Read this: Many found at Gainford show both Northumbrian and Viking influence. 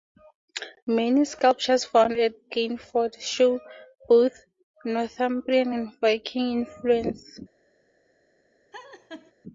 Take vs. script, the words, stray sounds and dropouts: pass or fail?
fail